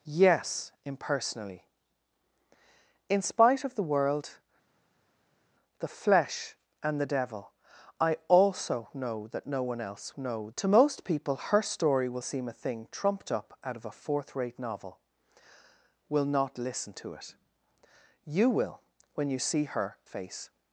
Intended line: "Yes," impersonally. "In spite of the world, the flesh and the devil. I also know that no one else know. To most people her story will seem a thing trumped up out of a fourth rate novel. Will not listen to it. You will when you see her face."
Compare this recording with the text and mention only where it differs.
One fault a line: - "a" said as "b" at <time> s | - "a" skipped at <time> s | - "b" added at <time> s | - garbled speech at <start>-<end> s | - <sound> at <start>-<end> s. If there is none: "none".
none